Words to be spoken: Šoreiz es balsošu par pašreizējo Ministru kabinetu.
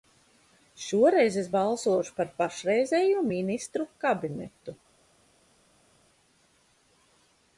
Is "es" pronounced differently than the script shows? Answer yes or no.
no